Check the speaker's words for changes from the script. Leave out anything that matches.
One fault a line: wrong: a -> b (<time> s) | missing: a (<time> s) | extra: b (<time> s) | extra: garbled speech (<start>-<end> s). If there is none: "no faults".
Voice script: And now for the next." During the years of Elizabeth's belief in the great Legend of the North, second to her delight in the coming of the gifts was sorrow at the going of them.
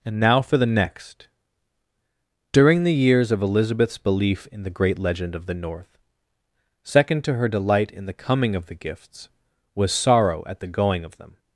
no faults